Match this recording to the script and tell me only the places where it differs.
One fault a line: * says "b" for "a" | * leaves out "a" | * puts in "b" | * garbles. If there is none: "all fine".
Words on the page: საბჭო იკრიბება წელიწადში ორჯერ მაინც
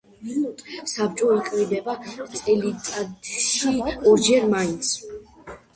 all fine